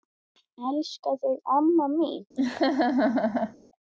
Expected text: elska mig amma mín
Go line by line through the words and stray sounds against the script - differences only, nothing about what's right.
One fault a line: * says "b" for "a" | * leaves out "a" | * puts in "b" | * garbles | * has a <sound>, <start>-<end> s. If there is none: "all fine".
* says "þig" for "mig"
* has a laugh, 2.4-3.6 s